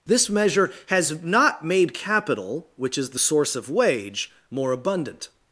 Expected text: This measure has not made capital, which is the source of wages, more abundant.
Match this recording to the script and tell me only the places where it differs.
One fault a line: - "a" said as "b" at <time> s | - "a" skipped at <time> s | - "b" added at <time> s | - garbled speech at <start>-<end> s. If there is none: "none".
- "wages" said as "wage" at 3.7 s